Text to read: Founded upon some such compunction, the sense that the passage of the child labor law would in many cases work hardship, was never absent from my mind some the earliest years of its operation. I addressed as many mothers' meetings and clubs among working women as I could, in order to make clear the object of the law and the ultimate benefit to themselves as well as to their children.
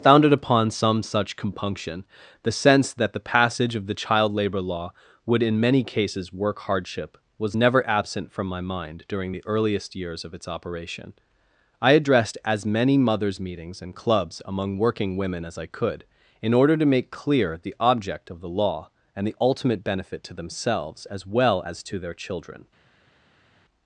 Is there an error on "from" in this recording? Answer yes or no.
no